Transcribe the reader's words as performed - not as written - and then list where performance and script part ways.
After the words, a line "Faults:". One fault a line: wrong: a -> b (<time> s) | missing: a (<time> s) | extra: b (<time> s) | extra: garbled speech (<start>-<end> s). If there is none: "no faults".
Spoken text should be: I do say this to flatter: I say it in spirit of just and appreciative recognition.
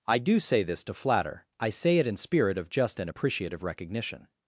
I do say this to flatter: I say it in spirit of just and appreciative recognition.
Faults:
no faults